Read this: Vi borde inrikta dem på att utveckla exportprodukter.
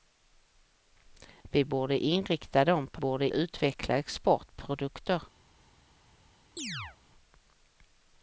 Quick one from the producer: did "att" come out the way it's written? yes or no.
no